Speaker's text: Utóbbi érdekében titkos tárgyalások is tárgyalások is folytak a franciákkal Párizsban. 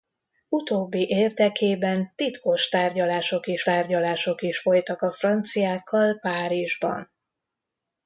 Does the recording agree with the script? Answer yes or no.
yes